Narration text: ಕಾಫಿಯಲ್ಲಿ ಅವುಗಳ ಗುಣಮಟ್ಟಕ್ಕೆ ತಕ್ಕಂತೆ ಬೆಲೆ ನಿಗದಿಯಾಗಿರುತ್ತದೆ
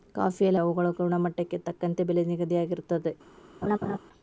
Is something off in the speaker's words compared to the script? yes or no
no